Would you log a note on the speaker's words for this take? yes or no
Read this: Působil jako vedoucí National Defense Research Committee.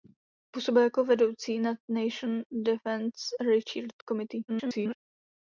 yes